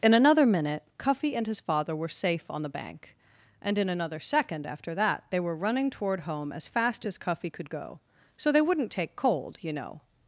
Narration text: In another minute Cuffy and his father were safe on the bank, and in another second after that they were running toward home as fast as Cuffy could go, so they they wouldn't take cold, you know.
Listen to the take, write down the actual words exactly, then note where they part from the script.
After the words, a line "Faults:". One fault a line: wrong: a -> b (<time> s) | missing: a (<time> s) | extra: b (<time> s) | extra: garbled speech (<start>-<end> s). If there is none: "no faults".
In another minute Cuffy and his father were safe on the bank, and in another second after that they were running toward home as fast as Cuffy could go, so they wouldn't take cold, you know.
Faults:
missing: they (8.6 s)